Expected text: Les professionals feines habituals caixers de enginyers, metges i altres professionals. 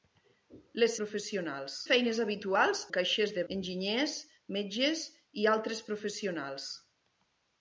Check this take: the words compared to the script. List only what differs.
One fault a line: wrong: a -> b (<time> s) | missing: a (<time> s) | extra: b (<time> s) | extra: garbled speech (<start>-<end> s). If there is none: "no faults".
no faults